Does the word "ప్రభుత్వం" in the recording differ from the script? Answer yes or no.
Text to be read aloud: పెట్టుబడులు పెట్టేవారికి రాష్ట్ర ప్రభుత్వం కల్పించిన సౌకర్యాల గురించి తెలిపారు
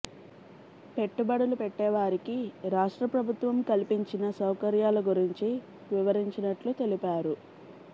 no